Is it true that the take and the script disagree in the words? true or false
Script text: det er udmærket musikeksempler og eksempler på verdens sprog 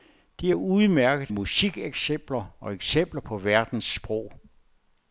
false